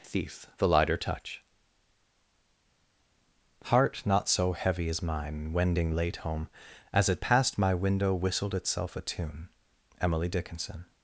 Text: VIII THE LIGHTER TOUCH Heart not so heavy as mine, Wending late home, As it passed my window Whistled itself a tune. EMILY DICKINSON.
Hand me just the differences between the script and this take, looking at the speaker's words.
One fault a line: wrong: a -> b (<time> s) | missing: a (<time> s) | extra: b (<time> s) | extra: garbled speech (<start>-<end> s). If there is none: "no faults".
wrong: VIII -> Thief (0.0 s)